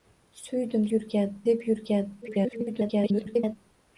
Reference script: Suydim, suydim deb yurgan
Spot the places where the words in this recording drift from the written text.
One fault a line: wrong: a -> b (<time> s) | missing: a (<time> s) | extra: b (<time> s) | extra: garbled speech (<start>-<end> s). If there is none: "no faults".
wrong: suydim -> yurgan (0.9 s)
extra: garbled speech (2.2-3.6 s)